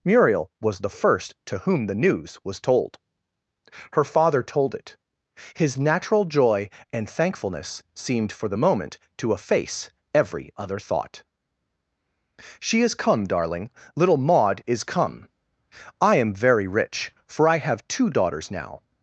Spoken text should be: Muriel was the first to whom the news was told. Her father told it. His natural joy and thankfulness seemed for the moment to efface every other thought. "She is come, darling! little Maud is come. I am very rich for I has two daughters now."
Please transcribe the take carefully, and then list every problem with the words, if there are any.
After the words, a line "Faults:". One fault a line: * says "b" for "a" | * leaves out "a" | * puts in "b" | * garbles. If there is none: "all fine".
Muriel was the first to whom the news was told. Her father told it. His natural joy and thankfulness seemed for the moment to efface every other thought. "She is come, darling! little Maud is come. I am very rich for I have two daughters now."
Faults:
* says "have" for "has"